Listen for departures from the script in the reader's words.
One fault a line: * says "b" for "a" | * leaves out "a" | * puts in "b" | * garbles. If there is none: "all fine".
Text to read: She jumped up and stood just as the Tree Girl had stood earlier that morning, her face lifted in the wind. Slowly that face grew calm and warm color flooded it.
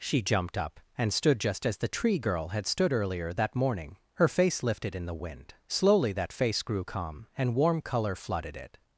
all fine